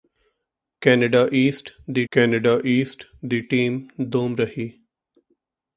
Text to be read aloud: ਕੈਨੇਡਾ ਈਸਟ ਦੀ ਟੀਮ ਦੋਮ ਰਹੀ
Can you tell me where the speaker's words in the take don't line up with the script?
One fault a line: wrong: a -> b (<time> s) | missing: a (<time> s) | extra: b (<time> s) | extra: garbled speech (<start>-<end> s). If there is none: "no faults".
extra: ਕੈਨੇਡਾ ਈਸਟ ਦੀ (2.1 s)